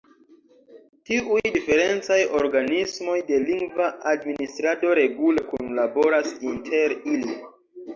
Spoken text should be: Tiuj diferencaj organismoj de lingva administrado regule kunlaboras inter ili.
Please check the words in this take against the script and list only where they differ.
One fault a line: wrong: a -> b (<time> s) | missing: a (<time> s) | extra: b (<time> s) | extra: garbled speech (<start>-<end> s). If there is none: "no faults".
no faults